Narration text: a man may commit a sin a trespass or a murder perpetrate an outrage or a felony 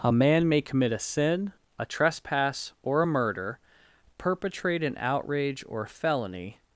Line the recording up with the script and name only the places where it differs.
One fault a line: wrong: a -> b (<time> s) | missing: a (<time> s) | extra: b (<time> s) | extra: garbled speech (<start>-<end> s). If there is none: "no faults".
missing: a (5.9 s)